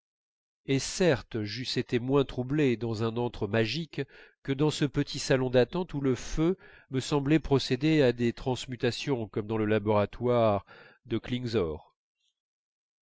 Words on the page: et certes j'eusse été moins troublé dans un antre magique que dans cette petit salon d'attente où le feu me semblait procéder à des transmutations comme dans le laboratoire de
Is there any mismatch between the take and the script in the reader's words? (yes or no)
yes